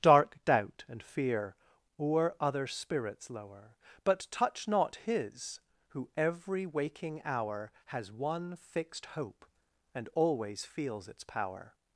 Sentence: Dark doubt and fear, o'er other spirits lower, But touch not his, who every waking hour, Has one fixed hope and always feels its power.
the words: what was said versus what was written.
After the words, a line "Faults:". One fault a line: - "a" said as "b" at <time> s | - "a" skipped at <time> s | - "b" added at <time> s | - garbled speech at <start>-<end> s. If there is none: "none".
Dark doubt and fear, o'er other spirits lower, But touch not his, who every waking hour, Has one fixed hope and always feels its power.
Faults:
none